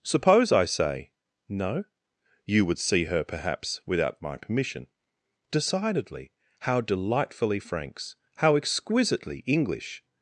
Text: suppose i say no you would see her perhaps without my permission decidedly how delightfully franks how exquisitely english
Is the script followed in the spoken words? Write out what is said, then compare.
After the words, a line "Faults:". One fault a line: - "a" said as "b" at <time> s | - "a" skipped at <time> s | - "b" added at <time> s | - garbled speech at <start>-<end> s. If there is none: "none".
suppose i say no you would see her perhaps without my permission decidedly how delightfully franks how exquisitely english
Faults:
none